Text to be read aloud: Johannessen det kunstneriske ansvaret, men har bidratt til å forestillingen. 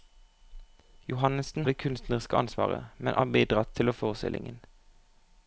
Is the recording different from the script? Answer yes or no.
no